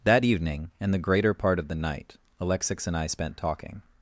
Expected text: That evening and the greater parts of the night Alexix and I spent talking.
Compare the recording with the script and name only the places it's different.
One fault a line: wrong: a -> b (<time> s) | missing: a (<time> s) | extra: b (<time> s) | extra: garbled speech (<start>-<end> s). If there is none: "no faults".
wrong: parts -> part (1.3 s)